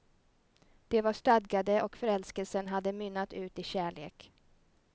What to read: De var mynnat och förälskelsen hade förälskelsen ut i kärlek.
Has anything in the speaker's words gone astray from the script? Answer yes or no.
yes